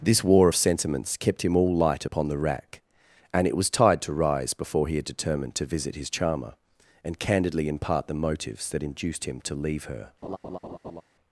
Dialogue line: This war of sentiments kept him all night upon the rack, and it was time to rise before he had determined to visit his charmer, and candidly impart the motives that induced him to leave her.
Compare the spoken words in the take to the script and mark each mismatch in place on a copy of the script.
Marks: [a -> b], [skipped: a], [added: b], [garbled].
This war of sentiments kept him all [night -> light] upon the rack, and it was [time -> tide] to rise before he had determined to visit his charmer, and candidly impart the motives that induced him to leave her.